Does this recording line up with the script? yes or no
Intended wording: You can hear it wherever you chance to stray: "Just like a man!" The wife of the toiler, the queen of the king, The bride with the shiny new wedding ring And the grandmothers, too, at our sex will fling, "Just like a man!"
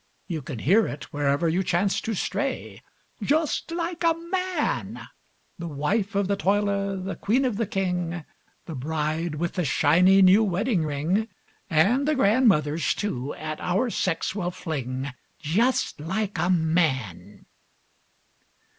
yes